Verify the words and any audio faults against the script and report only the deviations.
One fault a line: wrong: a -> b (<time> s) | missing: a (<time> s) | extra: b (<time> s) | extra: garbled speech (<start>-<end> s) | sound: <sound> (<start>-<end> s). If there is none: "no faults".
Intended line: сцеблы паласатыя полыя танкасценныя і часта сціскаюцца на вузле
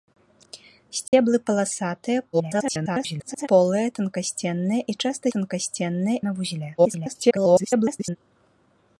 sound: dropout (1.1-1.1 s)
extra: garbled speech (2.3-3.5 s)
wrong: сціскаюцца -> танкасценныя (5.3 s)
extra: garbled speech (6.8-8.2 s)